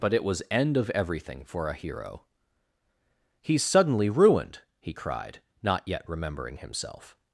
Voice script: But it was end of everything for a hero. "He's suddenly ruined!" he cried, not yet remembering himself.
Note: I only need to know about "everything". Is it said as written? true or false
true